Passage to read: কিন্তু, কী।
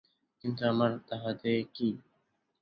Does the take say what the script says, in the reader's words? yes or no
no